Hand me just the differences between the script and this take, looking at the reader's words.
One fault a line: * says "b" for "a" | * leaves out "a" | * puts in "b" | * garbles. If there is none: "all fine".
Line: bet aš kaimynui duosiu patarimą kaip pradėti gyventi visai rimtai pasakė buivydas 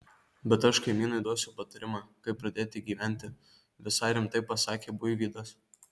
all fine